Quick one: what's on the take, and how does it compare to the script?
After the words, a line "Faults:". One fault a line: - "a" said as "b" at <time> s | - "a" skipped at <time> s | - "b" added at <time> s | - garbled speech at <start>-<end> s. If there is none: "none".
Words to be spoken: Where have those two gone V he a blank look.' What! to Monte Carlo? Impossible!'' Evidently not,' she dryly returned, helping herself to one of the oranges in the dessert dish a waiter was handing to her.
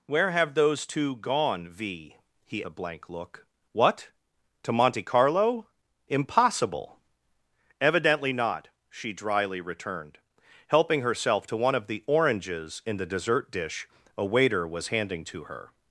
Where have those two gone V he a blank look.' What! to Monte Carlo? Impossible!'' Evidently not,' she dryly returned, helping herself to one of the oranges in the dessert dish a waiter was handing to her.
Faults:
none